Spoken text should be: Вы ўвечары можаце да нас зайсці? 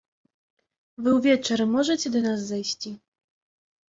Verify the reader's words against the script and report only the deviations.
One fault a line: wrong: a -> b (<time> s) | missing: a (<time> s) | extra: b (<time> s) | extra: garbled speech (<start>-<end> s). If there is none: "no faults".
no faults